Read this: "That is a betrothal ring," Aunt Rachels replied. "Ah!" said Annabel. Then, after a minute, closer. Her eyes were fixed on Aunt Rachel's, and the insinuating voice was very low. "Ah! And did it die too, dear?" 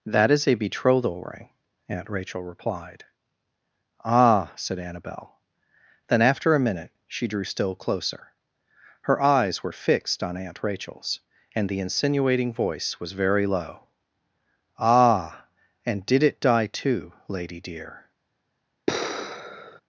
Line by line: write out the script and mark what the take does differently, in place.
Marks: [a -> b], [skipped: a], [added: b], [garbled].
"That is a betrothal ring," Aunt [Rachels -> Rachel] replied. "Ah!" said Annabel. Then, after a minute, [added: she drew still] closer. Her eyes were fixed on Aunt Rachel's, and the insinuating voice was very low. "Ah! And did it die too, [added: lady] dear?"